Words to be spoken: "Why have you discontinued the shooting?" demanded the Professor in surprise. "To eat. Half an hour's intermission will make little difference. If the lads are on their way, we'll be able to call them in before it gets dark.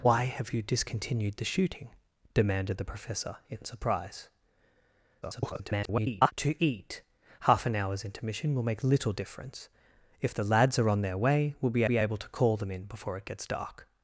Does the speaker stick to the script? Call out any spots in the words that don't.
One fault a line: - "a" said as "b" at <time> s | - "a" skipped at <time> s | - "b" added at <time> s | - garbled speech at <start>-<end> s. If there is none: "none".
- garbled speech at 5.2-6.3 s
- "be" added at 11.8 s